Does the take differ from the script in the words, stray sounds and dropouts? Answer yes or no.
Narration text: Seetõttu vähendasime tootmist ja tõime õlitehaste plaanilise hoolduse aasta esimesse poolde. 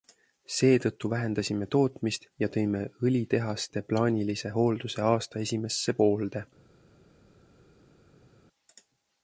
no